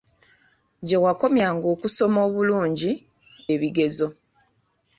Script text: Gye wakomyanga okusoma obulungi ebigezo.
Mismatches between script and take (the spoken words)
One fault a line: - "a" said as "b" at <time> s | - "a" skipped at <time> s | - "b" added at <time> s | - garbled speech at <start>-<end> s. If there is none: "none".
none